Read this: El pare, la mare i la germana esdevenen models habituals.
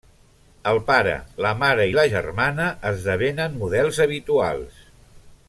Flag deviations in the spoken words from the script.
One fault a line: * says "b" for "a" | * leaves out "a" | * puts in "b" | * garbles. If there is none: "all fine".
all fine